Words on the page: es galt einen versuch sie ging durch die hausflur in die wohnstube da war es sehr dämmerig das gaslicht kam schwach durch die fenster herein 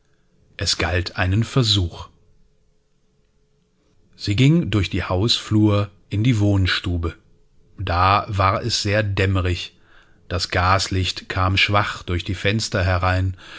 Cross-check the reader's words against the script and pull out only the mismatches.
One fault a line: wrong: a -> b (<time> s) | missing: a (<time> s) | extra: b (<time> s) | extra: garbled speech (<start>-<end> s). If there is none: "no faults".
no faults